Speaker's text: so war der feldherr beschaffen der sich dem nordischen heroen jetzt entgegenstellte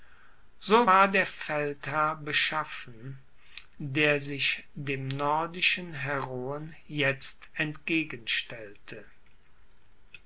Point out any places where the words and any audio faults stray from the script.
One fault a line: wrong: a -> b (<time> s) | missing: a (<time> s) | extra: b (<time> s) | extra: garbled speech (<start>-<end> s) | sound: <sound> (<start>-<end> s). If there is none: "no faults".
no faults